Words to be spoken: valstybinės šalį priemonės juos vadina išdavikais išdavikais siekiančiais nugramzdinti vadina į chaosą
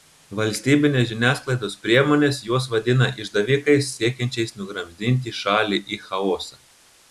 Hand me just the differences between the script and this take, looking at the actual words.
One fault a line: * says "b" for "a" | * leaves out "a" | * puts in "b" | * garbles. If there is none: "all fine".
* says "žiniasklaidos" for "šalį"
* leaves out "išdavikais"
* says "šalį" for "vadina"